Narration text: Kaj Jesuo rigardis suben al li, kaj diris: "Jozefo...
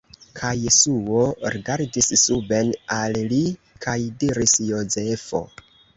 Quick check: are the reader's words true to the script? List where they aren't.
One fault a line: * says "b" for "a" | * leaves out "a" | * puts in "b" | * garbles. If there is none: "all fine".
all fine